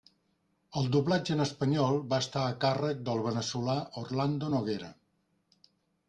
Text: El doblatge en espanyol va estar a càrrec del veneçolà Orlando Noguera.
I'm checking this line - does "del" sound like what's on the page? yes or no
yes